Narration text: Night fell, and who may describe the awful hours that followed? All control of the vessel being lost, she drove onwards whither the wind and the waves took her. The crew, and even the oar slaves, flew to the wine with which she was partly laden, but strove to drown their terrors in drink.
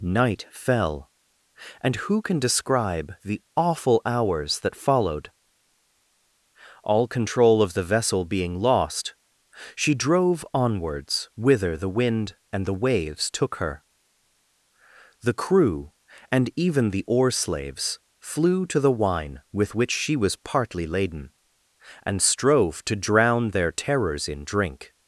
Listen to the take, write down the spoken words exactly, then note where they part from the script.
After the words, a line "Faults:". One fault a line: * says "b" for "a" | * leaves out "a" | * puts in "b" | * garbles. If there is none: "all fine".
Night fell, and who can describe the awful hours that followed? All control of the vessel being lost, she drove onwards whither the wind and the waves took her. The crew, and even the oar slaves, flew to the wine with which she was partly laden, and strove to drown their terrors in drink.
Faults:
* says "can" for "may"
* says "and" for "but"